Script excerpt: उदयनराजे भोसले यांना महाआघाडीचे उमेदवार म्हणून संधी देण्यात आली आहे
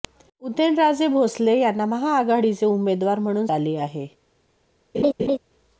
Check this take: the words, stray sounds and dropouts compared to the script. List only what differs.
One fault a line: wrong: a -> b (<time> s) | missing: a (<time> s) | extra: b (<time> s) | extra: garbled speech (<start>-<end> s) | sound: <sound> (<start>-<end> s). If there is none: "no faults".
missing: संधी देण्यात (3.5 s)
sound: laugh (4.9-5.4 s)